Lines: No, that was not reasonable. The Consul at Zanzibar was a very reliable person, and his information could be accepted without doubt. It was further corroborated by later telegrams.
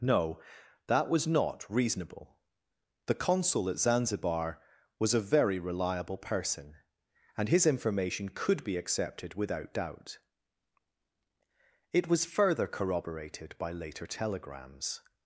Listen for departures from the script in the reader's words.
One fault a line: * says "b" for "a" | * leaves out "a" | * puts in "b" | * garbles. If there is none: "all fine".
all fine